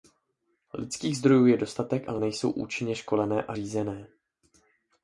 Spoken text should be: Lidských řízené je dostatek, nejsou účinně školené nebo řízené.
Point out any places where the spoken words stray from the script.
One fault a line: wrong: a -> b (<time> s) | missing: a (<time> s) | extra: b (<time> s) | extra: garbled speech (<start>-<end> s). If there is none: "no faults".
wrong: řízené -> zdrojů (1.2 s)
extra: ale (2.1 s)
wrong: nebo -> a (3.4 s)